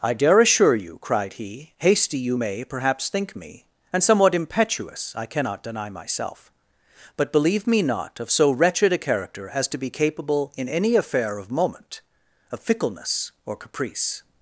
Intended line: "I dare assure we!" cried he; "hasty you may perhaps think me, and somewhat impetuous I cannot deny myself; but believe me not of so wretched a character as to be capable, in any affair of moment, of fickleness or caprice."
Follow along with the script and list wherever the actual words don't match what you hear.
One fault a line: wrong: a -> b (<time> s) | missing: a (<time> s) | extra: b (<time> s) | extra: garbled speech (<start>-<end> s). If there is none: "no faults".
wrong: we -> you (0.8 s)